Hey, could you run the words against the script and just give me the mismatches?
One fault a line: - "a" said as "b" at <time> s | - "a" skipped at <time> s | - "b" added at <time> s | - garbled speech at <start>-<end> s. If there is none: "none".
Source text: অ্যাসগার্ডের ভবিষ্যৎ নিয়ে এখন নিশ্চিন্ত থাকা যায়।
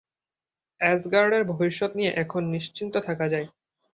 none